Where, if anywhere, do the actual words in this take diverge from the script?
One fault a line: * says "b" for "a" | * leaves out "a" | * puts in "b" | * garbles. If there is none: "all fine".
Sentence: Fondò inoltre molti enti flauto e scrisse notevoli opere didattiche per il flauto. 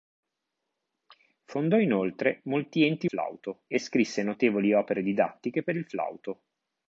all fine